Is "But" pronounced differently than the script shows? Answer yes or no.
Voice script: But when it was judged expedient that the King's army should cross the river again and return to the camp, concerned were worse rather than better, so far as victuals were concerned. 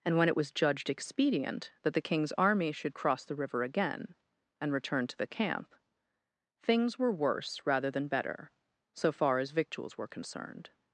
yes